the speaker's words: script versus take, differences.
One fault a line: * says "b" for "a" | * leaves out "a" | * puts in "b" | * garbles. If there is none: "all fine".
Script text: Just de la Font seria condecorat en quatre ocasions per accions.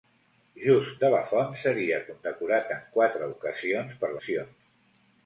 all fine